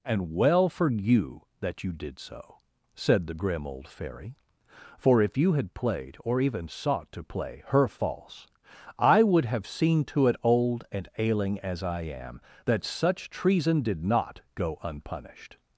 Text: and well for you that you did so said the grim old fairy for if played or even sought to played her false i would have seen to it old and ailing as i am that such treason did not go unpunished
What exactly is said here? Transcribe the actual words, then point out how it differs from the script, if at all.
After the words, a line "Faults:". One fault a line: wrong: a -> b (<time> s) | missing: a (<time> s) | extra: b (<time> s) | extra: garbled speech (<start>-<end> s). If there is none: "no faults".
and well for you that you did so said the grim old fairy for if you had played or even sought to play her false i would have seen to it old and ailing as i am that such treason did not go unpunished
Faults:
extra: you had (5.4 s)
wrong: played -> play (7.2 s)